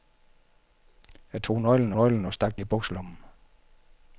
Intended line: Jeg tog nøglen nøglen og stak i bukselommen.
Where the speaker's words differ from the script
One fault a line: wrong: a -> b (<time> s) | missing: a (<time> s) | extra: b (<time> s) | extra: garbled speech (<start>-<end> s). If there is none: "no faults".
no faults